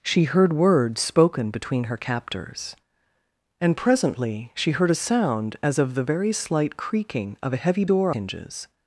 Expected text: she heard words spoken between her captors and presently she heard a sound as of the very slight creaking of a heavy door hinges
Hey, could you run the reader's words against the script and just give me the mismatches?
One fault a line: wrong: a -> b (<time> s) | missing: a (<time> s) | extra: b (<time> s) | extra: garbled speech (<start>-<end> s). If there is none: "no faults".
no faults